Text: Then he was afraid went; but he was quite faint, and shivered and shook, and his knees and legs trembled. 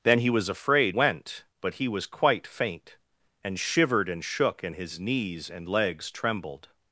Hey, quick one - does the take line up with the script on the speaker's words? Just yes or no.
yes